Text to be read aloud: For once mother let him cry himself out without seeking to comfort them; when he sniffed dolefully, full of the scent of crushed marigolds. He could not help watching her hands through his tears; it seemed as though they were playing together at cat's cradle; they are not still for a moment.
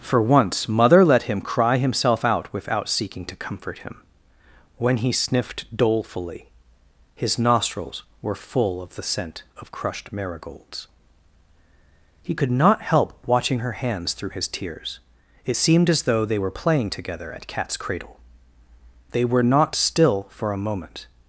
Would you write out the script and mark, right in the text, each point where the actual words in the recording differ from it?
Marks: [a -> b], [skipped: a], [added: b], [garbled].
For once mother let him cry himself out without seeking to comfort [them; -> him] when he sniffed dolefully, [added: his nostrils were] full of the scent of crushed marigolds. He could not help watching her hands through his tears; it seemed as though they were playing together at cat's cradle; they [are -> were] not still for a moment.